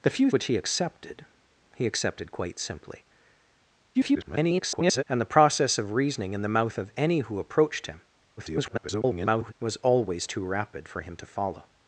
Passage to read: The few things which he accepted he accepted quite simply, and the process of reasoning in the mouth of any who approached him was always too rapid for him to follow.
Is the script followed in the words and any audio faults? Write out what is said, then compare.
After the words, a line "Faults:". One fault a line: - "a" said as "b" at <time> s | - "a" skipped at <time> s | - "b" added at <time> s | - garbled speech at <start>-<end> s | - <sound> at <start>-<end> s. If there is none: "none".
The few which he accepted he accepted quite simply, [garbled] and the process of reasoning in the mouth of any who approached him [garbled] was always too rapid for him to follow.
Faults:
- "things" skipped at 0.3 s
- garbled speech at 3.9-5.0 s
- garbled speech at 8.4-9.5 s